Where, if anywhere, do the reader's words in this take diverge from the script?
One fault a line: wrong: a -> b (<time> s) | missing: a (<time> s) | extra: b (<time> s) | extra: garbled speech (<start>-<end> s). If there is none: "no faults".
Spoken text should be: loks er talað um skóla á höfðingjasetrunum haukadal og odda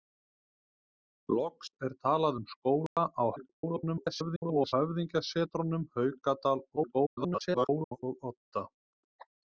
extra: garbled speech (3.4-4.7 s)
extra: garbled speech (6.8-8.0 s)